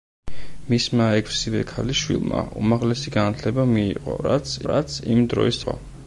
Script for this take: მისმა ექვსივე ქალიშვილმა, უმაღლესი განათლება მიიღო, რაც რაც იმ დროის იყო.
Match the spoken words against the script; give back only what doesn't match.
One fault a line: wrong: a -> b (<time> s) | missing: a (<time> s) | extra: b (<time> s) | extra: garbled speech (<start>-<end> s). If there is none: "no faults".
no faults